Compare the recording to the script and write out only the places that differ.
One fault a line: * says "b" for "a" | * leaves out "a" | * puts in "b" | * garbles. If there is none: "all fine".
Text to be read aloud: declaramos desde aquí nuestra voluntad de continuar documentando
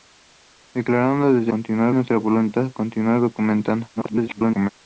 * says "continuar" for "aquí"
* leaves out "de"
* garbles